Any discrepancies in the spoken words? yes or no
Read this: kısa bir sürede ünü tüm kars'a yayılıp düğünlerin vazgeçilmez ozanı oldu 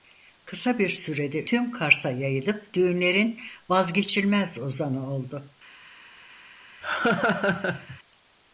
yes